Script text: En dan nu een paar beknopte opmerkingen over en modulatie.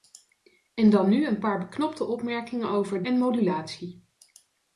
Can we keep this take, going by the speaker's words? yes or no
yes